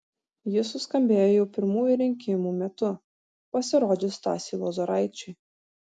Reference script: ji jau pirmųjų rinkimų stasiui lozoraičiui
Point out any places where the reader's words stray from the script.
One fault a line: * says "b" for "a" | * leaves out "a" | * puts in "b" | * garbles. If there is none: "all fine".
* puts in "suskambėjo"
* puts in "metu pasirodžius"